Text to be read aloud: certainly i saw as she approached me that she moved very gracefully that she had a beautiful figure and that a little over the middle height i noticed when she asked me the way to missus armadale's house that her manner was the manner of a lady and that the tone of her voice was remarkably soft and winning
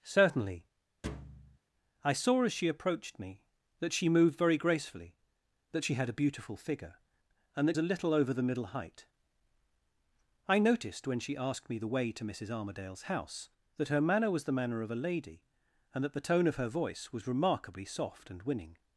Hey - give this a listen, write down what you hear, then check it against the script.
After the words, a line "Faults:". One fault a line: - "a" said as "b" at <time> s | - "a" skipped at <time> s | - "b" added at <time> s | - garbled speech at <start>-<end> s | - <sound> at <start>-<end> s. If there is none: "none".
certainly i saw as she approached me that she moved very gracefully that she had a beautiful figure and that a little over the middle height i noticed when she asked me the way to missus armadale's house that her manner was the manner of a lady and that the tone of her voice was remarkably soft and winning
Faults:
- thud at 1.0-1.6 s